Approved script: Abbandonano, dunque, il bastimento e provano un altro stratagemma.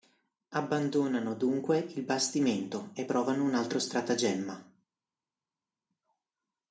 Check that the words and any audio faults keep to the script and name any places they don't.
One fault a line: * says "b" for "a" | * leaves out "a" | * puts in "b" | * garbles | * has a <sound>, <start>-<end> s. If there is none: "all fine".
all fine